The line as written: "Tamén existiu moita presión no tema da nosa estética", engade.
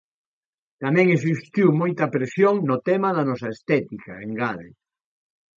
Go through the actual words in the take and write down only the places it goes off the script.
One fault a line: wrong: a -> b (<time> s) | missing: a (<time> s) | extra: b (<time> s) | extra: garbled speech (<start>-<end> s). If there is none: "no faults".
no faults